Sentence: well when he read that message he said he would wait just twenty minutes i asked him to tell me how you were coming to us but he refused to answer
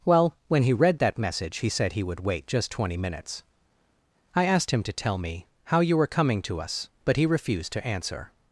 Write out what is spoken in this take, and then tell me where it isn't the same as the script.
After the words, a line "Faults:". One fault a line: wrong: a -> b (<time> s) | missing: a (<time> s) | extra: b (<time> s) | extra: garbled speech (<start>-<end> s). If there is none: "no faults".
well when he read that message he said he would wait just twenty minutes i asked him to tell me how you were coming to us but he refused to answer
Faults:
no faults